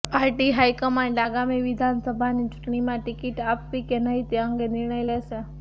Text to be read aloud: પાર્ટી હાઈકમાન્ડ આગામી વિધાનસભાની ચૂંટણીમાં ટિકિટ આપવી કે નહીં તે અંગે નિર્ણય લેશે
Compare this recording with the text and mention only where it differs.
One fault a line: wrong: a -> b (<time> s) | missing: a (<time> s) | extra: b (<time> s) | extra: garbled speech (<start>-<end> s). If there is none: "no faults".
no faults